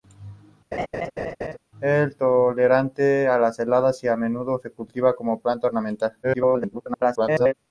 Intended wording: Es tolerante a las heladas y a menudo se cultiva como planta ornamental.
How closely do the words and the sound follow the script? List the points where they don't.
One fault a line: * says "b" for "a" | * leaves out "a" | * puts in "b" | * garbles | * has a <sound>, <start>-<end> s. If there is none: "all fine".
* has a laugh, 0.7-1.6 s
* garbles